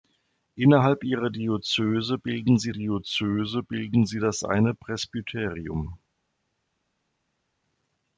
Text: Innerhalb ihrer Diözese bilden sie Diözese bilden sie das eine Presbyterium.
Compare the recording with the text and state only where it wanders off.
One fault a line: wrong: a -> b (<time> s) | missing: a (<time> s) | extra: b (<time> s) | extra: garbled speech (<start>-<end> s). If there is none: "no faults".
no faults